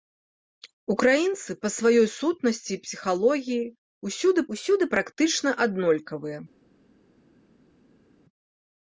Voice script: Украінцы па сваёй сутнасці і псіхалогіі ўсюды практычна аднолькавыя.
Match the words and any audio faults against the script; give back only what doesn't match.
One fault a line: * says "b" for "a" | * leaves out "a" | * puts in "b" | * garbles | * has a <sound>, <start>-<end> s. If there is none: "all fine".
* puts in "ўсюды"